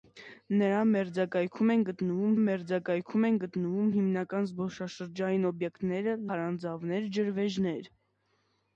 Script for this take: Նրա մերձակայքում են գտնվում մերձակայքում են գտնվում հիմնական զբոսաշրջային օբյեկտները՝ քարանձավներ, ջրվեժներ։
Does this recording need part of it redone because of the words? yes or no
no